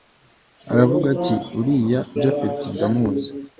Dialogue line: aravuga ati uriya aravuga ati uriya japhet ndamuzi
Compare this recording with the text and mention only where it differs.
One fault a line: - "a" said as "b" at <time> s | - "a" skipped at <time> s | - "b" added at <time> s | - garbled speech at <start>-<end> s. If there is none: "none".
- "aravuga ati uriya" skipped at 2.0 s